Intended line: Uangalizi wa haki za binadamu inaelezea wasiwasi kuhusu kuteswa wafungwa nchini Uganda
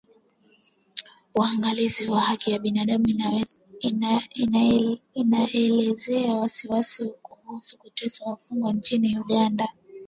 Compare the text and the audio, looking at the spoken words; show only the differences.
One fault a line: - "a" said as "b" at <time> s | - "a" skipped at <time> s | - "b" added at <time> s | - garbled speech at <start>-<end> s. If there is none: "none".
none